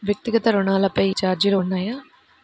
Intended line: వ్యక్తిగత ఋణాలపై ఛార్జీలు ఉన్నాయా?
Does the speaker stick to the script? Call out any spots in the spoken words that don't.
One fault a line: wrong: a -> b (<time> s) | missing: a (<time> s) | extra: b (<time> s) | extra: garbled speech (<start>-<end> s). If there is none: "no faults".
no faults